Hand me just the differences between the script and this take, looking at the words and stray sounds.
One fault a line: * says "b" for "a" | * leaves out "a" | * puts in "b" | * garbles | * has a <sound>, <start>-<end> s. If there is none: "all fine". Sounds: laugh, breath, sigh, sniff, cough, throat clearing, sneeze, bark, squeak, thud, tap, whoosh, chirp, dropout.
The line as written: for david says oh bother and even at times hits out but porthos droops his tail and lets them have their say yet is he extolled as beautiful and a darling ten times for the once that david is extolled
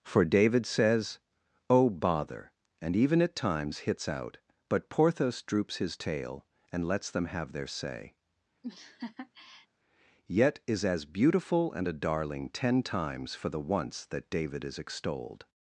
* has a laugh, 8.6-9.7 s
* leaves out "he extolled"